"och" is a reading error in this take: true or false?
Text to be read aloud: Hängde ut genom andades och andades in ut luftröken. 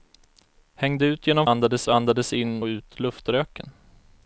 false